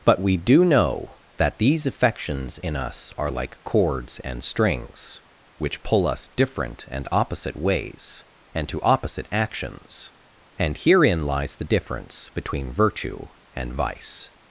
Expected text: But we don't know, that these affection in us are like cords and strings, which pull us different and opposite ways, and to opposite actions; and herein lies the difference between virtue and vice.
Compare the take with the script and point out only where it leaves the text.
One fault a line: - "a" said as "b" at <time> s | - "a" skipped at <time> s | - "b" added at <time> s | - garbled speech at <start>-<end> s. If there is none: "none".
- "don't" said as "do" at 0.4 s
- "affection" said as "affections" at 1.9 s